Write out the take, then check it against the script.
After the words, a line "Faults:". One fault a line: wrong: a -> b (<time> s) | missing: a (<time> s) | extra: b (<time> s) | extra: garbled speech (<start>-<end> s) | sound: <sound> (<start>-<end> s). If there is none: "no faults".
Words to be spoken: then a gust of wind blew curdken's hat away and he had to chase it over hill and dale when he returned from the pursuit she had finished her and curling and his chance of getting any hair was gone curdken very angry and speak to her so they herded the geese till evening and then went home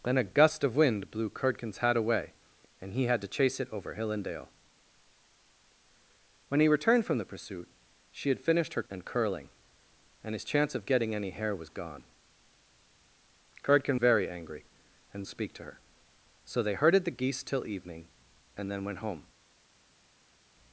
then a gust of wind blew curdken's hat away and he had to chase it over hill and dale when he returned from the pursuit she had finished her and curling and his chance of getting any hair was gone curdken very angry and speak to her so they herded the geese till evening and then went home
Faults:
no faults